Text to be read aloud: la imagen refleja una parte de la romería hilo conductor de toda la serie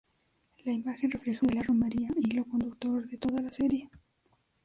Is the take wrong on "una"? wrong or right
wrong